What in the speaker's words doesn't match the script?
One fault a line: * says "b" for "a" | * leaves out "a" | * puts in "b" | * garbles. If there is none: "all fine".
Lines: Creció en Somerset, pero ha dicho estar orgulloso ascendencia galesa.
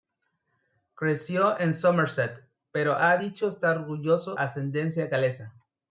all fine